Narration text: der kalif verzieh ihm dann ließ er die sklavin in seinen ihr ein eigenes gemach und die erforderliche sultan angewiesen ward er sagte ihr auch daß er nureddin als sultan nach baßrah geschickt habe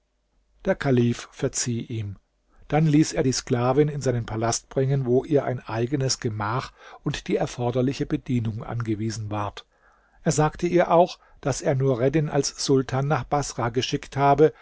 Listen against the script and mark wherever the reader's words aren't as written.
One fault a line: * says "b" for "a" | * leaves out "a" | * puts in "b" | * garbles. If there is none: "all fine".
* puts in "palast bringen wo"
* says "bedienung" for "sultan"